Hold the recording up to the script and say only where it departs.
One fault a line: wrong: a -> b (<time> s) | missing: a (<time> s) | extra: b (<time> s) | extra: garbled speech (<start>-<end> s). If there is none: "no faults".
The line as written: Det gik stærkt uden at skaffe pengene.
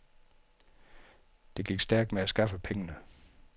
wrong: uden -> med (2.1 s)